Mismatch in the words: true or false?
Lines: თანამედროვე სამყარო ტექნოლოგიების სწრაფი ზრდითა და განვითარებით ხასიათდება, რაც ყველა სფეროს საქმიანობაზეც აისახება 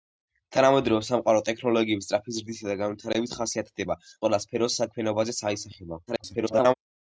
true